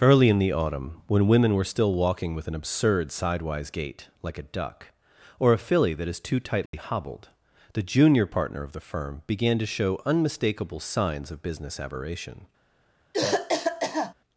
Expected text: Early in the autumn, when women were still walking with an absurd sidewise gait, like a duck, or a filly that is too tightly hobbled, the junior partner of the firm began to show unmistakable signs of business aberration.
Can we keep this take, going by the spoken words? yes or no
yes